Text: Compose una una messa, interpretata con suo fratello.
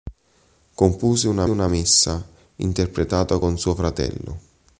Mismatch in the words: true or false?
false